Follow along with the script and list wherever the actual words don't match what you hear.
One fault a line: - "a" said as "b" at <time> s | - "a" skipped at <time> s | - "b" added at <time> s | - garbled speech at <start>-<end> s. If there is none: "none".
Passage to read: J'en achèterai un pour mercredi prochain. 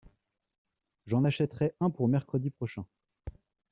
none